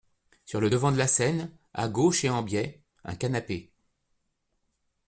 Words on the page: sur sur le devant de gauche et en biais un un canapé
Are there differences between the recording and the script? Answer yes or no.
yes